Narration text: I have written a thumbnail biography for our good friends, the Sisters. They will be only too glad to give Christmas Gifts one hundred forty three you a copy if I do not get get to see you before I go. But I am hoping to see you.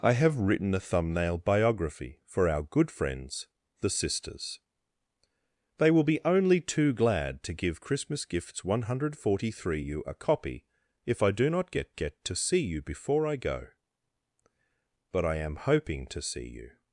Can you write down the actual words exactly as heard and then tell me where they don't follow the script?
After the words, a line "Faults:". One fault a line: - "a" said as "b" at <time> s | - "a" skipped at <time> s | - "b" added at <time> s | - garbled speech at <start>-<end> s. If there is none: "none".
I have written a thumbnail biography for our good friends, the Sisters. They will be only too glad to give Christmas Gifts one hundred forty three you a copy if I do not get get to see you before I go. But I am hoping to see you.
Faults:
none